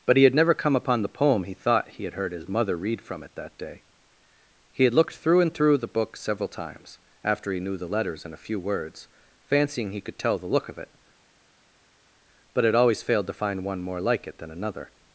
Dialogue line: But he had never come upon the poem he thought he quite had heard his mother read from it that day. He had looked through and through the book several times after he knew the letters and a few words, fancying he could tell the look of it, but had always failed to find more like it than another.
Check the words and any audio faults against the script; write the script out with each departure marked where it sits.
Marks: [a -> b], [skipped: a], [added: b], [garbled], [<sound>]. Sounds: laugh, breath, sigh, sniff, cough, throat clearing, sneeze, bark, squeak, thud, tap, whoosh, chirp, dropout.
But he had never come upon the poem he thought he [skipped: quite] had heard his mother read from it that day. He had looked through and through the book several times after he knew the letters and a few words, fancying he could tell the look of it, but had always failed to find [added: one] more like it than another.